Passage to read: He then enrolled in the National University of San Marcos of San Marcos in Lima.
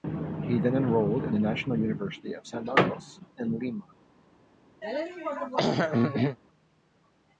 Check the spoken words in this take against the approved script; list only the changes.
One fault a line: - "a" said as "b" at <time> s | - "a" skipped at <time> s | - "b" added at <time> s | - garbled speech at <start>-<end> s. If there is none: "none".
- "of San Marcos" skipped at 3.2 s